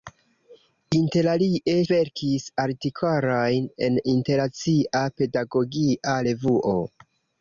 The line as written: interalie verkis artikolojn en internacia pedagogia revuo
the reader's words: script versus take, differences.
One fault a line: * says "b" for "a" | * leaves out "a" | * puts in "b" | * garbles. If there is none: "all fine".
all fine